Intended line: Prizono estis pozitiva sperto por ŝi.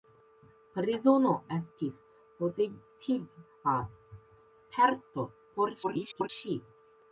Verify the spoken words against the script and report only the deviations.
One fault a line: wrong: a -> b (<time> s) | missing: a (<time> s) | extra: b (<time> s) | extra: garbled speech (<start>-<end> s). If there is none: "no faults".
extra: garbled speech (5.8-6.3 s)